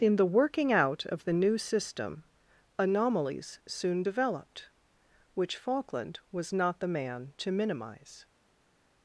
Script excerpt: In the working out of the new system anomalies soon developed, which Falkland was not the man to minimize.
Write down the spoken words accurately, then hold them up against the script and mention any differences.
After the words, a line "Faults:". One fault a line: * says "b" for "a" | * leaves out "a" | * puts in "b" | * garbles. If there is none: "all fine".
In the working out of the new system anomalies soon developed, which Falkland was not the man to minimize.
Faults:
all fine